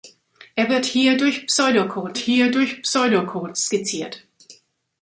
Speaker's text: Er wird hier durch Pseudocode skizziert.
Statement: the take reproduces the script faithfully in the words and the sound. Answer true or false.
false